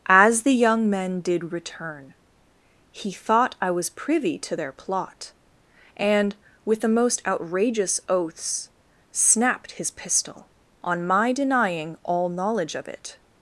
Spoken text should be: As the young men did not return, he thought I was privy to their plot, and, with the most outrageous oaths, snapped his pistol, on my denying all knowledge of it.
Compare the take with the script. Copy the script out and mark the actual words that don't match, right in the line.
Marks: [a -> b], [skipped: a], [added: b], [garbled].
As the young men did [skipped: not] return, he thought I was privy to their plot, and, with the most outrageous oaths, snapped his pistol, on my denying all knowledge of it.